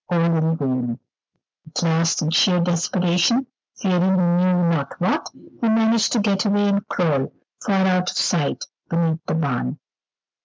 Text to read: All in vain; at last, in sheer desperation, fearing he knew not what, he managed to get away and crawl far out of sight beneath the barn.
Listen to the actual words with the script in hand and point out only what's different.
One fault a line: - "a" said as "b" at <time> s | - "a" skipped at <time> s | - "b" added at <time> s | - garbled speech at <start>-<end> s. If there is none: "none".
none